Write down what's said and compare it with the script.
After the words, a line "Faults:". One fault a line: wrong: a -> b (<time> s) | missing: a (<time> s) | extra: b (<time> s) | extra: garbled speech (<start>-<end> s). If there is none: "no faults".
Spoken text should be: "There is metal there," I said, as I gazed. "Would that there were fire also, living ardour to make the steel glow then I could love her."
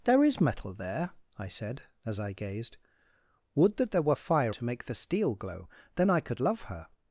"There is metal there," I said, as I gazed. "Would that there were fire to make the steel glow then I could love her."
Faults:
missing: also living ardour (4.5 s)